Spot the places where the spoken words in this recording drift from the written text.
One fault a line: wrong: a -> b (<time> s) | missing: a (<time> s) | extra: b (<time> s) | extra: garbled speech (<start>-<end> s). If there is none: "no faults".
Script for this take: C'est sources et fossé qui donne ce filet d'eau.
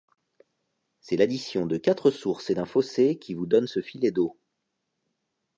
extra: l'addition de quatre (1.1 s)
extra: d'un (2.5 s)
extra: vous (3.3 s)